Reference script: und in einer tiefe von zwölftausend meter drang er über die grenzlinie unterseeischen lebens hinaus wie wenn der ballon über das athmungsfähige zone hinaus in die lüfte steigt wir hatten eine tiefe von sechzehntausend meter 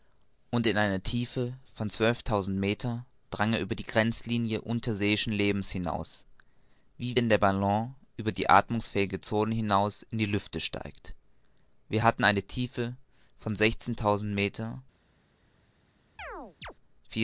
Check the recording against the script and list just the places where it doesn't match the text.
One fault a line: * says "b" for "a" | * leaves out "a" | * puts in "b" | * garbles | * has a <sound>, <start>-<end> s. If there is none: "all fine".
* says "die" for "das"
* has a chirp, 16.2-16.7 s